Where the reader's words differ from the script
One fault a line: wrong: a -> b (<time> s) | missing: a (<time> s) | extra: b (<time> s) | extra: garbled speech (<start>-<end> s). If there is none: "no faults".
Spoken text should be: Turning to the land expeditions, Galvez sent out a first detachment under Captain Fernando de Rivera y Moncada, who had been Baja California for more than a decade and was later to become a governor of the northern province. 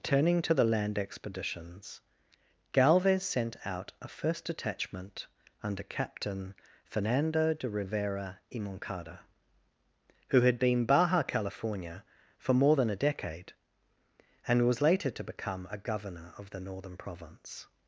no faults